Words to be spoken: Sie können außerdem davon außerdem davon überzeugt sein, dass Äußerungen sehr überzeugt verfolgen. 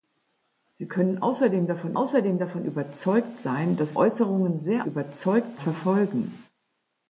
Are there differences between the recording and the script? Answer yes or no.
no